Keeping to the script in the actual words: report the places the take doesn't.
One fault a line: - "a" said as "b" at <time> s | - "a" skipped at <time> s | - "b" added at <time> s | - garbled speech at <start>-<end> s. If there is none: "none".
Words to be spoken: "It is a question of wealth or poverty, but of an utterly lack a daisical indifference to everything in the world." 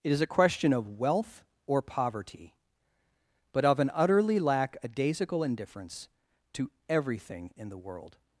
none